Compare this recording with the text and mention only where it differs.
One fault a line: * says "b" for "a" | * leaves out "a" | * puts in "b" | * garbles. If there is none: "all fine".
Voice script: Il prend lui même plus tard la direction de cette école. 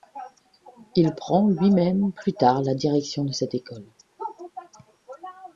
all fine